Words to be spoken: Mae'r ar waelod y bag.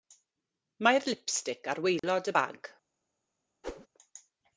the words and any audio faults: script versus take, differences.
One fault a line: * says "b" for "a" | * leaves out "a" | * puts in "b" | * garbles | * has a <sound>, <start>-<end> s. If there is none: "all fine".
* puts in "lipstic"
* has a dropout, 2.0-2.0 s
* has a whoosh, 3.6-3.9 s